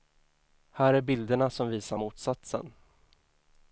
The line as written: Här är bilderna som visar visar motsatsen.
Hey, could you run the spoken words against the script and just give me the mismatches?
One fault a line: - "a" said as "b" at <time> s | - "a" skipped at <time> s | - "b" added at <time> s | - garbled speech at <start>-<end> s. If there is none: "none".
- "visar" skipped at 2.0 s